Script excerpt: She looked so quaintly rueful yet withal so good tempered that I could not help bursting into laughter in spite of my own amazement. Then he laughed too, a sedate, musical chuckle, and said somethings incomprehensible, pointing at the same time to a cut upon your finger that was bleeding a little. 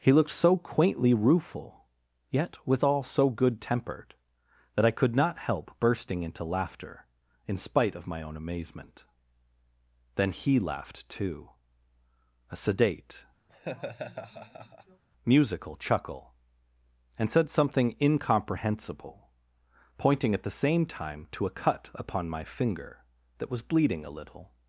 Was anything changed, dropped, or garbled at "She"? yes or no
yes